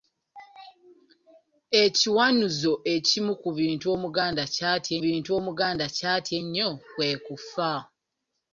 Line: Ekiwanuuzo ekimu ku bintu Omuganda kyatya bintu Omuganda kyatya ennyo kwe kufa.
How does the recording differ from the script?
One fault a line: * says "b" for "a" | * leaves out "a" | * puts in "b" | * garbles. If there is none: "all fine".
all fine